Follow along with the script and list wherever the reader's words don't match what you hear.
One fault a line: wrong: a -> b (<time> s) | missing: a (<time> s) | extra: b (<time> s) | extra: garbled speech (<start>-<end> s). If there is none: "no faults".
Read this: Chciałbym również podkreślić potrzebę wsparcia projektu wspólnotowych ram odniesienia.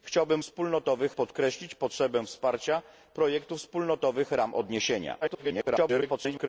wrong: również -> wspólnotowych (0.4 s)
extra: garbled speech (5.2-6.5 s)